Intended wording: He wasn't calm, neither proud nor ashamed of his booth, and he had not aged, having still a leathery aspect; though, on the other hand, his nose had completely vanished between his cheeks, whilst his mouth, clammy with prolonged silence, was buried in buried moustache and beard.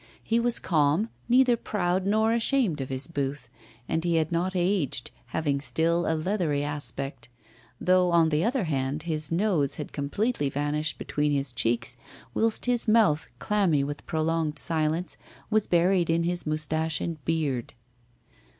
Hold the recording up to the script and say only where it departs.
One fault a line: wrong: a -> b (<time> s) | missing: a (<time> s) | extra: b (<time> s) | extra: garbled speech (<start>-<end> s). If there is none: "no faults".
wrong: wasn't -> was (0.4 s)
wrong: buried -> his (16.2 s)